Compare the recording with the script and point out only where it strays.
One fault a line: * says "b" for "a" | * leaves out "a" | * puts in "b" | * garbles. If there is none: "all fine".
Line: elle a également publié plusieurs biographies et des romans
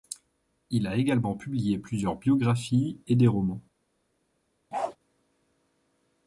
* says "il" for "elle"